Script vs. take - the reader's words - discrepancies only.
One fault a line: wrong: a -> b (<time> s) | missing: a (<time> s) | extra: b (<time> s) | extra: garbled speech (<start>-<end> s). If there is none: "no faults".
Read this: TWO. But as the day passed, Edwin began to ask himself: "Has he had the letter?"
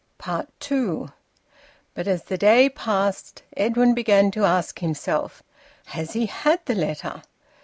no faults